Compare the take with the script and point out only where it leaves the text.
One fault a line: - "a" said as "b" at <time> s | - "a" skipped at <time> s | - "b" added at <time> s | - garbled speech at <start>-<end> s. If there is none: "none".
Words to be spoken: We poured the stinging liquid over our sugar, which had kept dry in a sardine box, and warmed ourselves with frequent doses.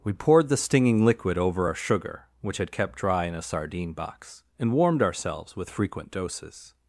none